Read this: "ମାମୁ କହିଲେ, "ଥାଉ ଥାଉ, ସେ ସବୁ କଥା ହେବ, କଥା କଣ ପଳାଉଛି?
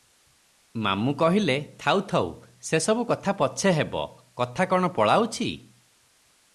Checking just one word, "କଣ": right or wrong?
right